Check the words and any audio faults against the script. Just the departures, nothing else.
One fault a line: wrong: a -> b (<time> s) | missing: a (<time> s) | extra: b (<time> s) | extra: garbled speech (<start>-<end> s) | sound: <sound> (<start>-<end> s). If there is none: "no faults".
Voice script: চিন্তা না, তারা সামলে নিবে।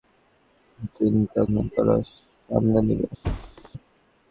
sound: thud (3.2-3.7 s)